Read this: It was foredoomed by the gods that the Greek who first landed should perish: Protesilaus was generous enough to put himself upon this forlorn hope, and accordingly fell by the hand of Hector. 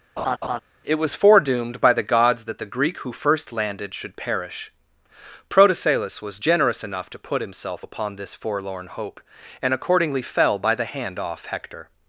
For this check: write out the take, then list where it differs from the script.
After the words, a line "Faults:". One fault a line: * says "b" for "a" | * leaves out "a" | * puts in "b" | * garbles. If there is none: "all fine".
It was foredoomed by the gods that the Greek who first landed should perish: Protesilaus was generous enough to put himself upon this forlorn hope, and accordingly fell by the hand off Hector.
Faults:
* says "off" for "of"